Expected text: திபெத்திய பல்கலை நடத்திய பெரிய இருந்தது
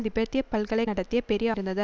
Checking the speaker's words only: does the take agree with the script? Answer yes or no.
yes